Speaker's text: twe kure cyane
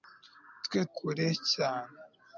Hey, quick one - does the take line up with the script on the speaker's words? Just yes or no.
yes